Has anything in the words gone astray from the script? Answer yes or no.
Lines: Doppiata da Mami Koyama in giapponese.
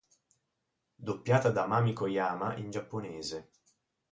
no